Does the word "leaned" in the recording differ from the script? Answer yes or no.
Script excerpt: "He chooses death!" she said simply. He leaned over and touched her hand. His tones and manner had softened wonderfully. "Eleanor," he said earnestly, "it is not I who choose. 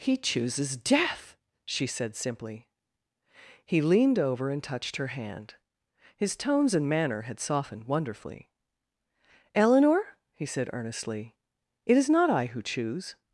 no